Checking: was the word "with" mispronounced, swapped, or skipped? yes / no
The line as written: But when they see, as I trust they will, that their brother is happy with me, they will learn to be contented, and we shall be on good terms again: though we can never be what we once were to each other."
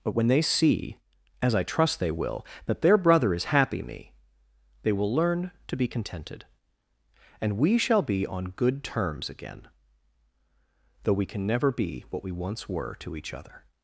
yes